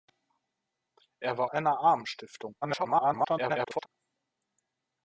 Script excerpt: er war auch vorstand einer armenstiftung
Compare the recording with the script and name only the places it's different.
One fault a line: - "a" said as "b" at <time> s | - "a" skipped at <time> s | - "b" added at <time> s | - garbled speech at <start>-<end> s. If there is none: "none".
- "auch vorstand" skipped at 1.5 s
- garbled speech at 2.6-3.9 s